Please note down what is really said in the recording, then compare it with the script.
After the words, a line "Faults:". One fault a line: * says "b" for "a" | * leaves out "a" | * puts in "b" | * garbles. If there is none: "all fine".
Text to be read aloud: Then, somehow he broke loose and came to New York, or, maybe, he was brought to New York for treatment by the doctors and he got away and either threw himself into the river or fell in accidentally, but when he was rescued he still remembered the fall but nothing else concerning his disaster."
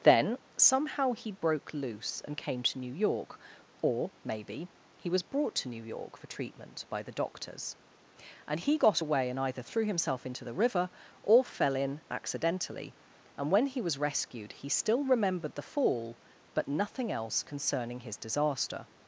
Then, somehow he broke loose and came to New York, or, maybe, he was brought to New York for treatment by the doctors and he got away and either threw himself into the river or fell in accidentally, and when he was rescued he still remembered the fall but nothing else concerning his disaster."
Faults:
* says "and" for "but"